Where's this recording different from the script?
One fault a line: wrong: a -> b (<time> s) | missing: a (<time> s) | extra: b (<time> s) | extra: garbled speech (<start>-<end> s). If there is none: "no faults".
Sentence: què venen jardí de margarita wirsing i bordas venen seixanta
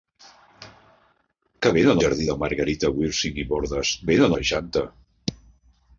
no faults